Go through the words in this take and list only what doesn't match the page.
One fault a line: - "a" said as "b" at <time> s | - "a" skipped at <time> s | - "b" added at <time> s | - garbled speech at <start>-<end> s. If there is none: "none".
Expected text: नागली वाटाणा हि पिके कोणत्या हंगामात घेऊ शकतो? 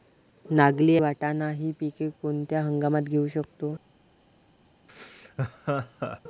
none